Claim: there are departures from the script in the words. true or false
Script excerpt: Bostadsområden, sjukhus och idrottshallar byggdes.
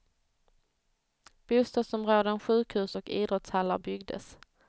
false